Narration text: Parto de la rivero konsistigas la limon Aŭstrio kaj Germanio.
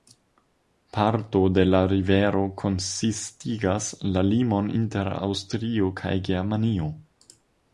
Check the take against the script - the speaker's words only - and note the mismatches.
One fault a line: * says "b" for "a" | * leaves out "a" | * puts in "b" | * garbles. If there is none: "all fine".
* puts in "inter"